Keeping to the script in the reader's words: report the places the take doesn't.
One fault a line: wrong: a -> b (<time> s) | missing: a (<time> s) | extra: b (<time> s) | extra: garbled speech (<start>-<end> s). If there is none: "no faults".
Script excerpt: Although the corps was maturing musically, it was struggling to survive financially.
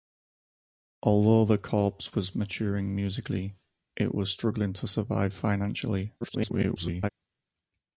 extra: garbled speech (6.2-7.1 s)